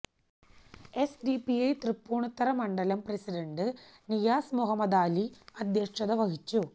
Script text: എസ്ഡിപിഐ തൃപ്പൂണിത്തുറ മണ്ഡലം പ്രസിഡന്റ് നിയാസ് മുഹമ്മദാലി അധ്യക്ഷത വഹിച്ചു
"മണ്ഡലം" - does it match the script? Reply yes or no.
yes